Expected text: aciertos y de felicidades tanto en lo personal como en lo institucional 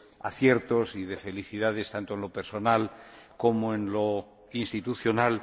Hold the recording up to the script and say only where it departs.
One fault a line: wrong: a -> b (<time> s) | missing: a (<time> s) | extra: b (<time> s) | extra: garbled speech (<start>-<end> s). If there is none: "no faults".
no faults